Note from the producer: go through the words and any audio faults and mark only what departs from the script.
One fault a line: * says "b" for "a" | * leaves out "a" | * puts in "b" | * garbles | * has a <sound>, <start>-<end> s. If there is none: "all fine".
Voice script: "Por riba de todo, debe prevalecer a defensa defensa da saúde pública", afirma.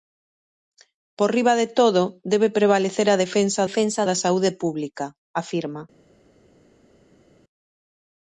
all fine